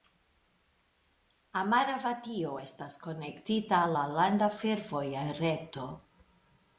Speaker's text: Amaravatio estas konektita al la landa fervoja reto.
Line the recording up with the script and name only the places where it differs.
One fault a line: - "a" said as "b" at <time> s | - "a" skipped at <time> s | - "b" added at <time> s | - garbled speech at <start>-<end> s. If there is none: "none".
none